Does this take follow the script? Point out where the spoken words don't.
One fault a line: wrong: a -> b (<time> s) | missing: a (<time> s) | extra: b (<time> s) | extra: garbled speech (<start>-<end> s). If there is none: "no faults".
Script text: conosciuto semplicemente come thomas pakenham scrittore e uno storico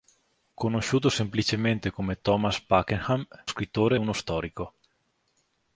no faults